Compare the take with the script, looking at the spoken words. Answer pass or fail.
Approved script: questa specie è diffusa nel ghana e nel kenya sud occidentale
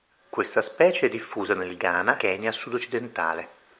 fail